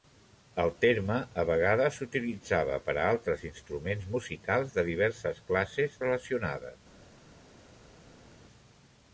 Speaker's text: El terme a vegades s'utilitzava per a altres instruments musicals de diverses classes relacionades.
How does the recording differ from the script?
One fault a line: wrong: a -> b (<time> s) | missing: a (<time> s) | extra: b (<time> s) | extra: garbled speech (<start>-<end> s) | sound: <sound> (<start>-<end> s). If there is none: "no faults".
no faults